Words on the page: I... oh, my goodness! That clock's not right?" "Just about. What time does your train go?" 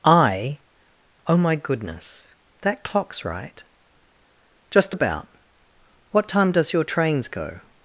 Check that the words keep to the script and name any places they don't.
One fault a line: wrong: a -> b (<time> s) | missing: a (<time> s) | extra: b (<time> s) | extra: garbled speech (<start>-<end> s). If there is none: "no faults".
missing: not (3.2 s)
wrong: train -> trains (6.8 s)